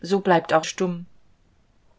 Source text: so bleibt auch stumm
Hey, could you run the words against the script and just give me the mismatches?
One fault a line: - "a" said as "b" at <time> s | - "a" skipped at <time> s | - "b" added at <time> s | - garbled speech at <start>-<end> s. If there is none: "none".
none